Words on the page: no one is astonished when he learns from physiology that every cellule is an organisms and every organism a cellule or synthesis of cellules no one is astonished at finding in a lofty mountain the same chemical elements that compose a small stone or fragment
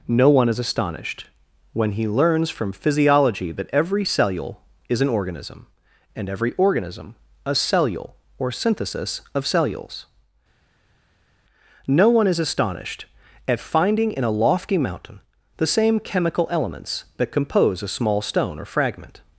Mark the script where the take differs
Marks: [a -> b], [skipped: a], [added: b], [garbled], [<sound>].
no one is astonished when he learns from physiology that every cellule is an [organisms -> organism] and every organism a cellule or synthesis of cellules no one is astonished at finding in a lofty mountain the same chemical elements that compose a small stone or fragment